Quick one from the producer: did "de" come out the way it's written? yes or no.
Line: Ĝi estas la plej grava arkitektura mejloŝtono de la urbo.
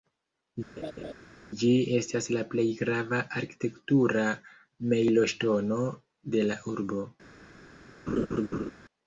yes